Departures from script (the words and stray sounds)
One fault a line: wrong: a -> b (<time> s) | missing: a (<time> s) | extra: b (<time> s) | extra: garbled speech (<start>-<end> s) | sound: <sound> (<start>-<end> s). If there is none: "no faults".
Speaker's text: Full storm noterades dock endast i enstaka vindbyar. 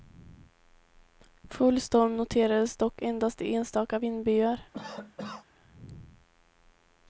sound: cough (4.7-5.5 s)